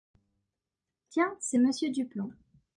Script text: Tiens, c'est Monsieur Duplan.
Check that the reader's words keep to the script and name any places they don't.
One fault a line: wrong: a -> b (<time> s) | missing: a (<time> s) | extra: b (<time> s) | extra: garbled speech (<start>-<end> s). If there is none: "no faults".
no faults